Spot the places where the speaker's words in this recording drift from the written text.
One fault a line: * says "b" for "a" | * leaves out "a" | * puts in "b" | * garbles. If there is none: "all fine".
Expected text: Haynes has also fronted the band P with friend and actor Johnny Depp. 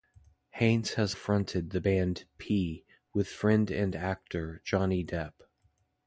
* leaves out "also"